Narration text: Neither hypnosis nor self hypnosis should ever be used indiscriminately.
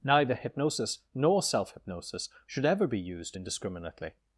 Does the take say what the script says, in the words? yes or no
yes